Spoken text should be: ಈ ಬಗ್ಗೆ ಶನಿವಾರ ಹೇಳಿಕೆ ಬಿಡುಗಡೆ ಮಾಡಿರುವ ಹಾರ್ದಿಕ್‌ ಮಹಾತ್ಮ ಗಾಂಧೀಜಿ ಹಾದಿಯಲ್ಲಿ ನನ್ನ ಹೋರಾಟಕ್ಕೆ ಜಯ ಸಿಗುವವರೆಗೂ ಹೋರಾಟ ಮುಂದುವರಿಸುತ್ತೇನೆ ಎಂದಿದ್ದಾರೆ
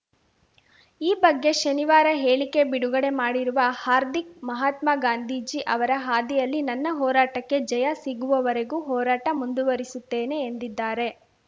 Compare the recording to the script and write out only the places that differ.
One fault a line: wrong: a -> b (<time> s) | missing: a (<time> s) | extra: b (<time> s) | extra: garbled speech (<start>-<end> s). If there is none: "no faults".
extra: ಅವರ (5.8 s)